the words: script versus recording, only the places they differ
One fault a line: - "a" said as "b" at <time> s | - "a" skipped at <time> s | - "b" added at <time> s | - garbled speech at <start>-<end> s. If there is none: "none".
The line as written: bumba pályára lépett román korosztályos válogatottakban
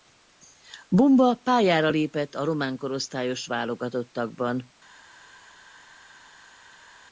- "a" added at 2.3 s